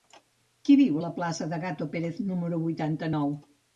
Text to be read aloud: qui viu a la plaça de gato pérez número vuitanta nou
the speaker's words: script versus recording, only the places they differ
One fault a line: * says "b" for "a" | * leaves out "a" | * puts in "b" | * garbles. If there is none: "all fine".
all fine